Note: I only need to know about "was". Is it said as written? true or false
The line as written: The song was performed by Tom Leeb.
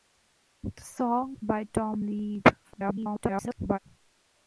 false